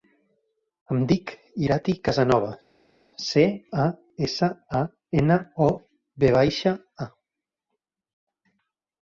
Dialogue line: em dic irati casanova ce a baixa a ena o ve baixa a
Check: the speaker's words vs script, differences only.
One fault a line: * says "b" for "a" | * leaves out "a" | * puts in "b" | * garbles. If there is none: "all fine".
* says "essa" for "baixa"